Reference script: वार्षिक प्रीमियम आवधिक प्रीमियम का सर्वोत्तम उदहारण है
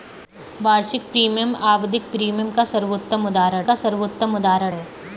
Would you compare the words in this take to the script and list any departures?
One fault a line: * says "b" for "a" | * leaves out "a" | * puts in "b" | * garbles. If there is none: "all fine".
* puts in "का सर्वोत्तम उदहारण"